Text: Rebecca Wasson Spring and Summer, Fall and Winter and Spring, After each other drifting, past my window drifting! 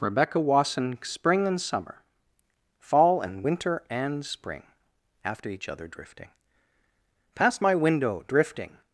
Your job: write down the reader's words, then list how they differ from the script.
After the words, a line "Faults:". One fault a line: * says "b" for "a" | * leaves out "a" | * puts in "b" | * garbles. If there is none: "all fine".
Rebecca Wasson Spring and Summer, Fall and Winter and Spring, After each other drifting, past my window drifting!
Faults:
all fine